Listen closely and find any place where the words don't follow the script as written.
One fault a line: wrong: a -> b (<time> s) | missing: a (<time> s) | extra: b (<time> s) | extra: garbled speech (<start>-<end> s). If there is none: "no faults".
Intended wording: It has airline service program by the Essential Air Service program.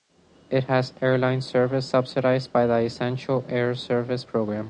wrong: program -> subsidized (1.9 s)